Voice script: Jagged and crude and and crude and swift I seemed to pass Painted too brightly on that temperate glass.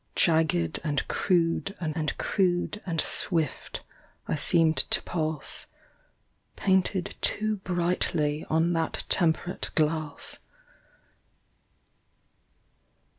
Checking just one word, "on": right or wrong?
right